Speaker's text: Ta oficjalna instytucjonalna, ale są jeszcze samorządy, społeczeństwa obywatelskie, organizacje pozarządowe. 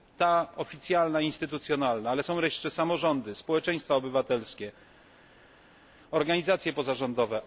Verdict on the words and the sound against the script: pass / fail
pass